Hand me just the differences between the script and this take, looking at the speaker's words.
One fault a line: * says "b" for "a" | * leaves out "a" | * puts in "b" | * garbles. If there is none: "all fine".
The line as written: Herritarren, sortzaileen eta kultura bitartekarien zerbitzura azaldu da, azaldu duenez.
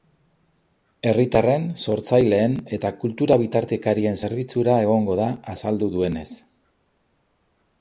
* says "egongo" for "azaldu"